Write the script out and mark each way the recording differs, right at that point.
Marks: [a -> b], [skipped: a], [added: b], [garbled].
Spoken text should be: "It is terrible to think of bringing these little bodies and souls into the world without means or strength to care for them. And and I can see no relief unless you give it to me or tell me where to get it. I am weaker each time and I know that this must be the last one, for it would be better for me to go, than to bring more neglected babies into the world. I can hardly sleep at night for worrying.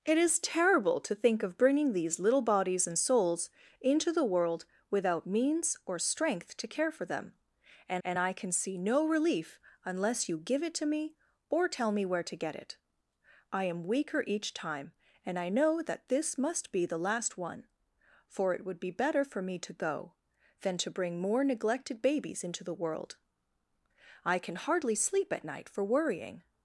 "It is terrible to think of bringing these little bodies and souls into the world without means or strength to care for them. And and I can see no relief unless you give it to me or tell me where to get it. I am weaker each time and I know that this must be the last one, for it would be better for me to go, than to bring more neglected babies into the world. I can hardly sleep at night for worrying.